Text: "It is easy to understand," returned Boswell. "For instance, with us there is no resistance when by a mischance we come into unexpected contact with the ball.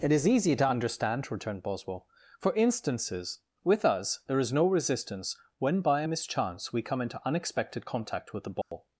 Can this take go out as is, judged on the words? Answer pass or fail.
fail